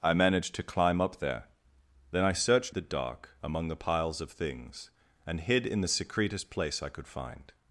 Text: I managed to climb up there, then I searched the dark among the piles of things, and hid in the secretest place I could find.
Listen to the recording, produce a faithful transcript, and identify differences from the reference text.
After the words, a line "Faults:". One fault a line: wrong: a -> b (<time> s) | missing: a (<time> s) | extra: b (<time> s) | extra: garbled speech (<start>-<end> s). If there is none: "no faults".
I managed to climb up there, then I searched the dark among the piles of things, and hid in the secretest place I could find.
Faults:
no faults